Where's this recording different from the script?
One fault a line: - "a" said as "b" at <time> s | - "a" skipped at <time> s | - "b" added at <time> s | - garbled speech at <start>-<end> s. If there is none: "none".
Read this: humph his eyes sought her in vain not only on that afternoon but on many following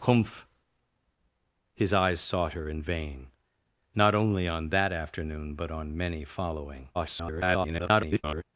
- garbled speech at 6.9-8.4 s